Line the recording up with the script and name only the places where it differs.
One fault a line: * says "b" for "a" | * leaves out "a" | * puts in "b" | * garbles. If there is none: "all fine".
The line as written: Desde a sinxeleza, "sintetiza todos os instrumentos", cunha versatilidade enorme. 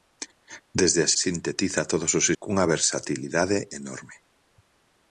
* leaves out "sinxeleza"
* leaves out "instrumentos"